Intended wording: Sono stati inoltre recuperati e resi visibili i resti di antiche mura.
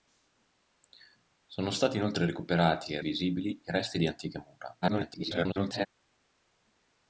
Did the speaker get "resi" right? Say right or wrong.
wrong